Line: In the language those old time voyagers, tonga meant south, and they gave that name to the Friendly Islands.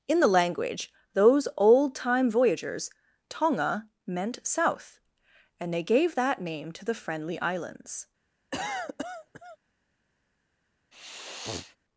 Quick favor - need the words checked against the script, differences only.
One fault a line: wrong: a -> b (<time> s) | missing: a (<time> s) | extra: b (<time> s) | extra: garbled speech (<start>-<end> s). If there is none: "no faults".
no faults